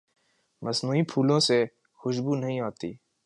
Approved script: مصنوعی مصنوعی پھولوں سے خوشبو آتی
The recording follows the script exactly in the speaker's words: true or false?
false